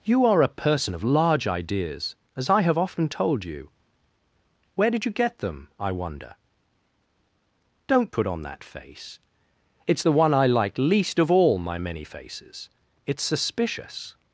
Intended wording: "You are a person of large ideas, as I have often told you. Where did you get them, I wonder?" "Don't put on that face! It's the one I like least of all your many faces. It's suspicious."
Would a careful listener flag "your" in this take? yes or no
yes